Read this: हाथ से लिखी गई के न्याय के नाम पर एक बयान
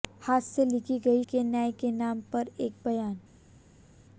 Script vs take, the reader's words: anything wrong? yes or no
no